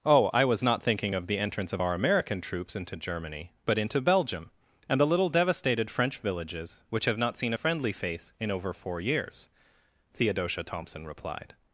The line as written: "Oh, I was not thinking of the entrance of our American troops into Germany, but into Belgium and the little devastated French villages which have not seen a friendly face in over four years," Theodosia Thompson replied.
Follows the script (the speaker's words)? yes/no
yes